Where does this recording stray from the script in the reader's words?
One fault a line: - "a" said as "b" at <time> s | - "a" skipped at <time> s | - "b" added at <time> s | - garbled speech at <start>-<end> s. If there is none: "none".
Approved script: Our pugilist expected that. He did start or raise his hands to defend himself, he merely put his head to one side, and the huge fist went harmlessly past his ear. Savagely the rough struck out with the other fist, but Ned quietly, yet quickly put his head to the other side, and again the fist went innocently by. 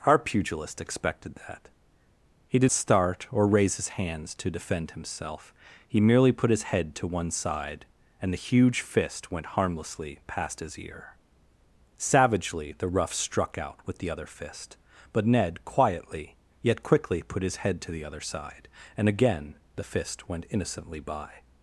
none